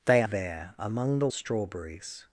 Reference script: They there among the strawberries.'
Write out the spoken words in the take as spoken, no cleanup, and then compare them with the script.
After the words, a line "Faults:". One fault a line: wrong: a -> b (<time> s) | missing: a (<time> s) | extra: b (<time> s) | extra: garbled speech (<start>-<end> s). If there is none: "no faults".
They there among the strawberries.'
Faults:
no faults